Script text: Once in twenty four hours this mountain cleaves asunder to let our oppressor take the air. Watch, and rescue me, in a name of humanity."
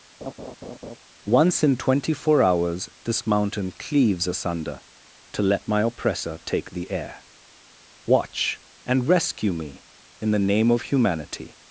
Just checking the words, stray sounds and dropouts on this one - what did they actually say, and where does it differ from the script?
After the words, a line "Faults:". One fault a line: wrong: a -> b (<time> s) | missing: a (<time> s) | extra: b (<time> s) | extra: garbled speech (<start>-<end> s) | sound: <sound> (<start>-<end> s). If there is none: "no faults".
Once in twenty four hours this mountain cleaves asunder to let my oppressor take the air. Watch, and rescue me, in the name of humanity."
Faults:
sound: laugh (0.2-1.0 s)
wrong: our -> my (5.7 s)
wrong: a -> the (10.3 s)